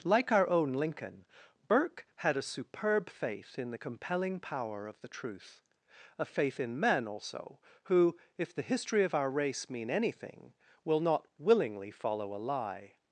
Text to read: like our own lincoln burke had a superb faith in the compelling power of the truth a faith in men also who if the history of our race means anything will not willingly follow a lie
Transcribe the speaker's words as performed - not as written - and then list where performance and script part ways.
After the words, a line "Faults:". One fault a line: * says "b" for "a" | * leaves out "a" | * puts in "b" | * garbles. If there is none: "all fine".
like our own lincoln burke had a superb faith in the compelling power of the truth a faith in men also who if the history of our race mean anything will not willingly follow a lie
Faults:
* says "mean" for "means"